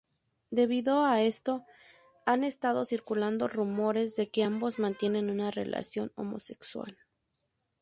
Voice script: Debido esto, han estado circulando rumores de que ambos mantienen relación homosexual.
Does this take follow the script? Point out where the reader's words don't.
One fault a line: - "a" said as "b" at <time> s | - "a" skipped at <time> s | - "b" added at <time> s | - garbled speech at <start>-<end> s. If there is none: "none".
- "a" added at 1.1 s
- "una" added at 5.3 s